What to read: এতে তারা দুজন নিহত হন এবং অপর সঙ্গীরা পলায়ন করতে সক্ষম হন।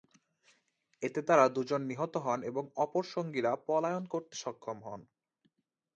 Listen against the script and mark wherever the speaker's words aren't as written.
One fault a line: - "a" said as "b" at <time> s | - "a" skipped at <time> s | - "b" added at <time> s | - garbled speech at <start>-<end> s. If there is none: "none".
none